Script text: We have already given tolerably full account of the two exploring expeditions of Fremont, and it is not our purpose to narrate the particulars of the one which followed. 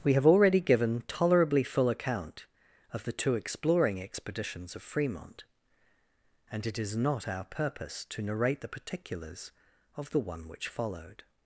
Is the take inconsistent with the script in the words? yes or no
no